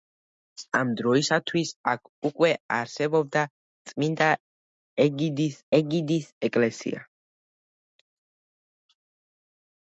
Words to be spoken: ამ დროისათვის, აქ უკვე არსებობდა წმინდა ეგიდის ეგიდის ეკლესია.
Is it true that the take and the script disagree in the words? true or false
false